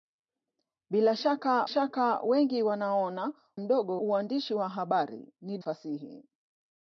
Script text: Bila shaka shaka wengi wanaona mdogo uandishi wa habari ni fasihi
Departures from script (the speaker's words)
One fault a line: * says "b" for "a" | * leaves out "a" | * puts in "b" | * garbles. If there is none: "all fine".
all fine